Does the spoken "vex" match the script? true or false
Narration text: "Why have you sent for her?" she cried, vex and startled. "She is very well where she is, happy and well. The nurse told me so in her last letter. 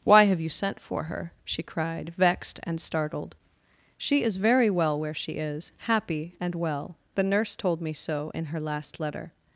false